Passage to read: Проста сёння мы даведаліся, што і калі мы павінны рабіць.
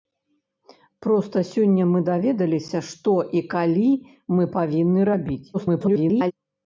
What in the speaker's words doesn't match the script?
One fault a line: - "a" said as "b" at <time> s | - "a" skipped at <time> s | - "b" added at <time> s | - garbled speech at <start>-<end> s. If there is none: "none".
- garbled speech at 5.5-6.3 s